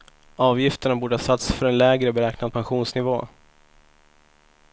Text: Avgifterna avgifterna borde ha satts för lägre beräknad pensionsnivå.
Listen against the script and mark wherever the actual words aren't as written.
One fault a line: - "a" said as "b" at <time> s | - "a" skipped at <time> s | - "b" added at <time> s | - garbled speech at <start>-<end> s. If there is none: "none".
- "avgifterna" skipped at 0.9 s
- "en" added at 1.6 s